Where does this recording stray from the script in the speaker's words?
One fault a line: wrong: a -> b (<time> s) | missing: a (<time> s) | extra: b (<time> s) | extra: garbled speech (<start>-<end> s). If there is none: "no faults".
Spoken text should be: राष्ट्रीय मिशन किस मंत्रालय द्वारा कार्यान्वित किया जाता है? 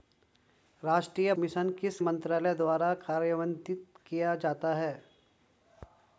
no faults